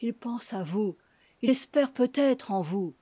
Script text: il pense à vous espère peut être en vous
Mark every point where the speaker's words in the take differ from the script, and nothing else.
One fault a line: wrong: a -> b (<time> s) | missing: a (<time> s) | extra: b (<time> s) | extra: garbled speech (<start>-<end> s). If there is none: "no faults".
extra: il (1.4 s)